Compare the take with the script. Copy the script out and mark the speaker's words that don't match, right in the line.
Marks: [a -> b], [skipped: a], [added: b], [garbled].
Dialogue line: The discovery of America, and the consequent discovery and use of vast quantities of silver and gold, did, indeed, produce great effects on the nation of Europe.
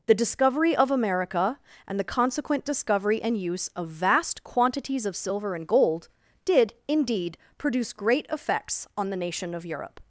The discovery of America, and the consequent discovery and use of vast quantities of silver and gold, did, indeed, produce great effects on the nation of Europe.